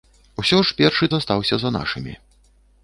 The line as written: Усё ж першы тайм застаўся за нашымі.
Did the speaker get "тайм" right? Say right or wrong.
wrong